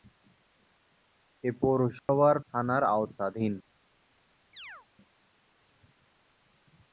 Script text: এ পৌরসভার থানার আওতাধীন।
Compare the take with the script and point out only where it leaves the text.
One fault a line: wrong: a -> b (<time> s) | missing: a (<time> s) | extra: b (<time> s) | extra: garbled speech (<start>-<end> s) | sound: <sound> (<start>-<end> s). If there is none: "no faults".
sound: dropout (2.0-2.1 s)
sound: chirp (4.5-4.9 s)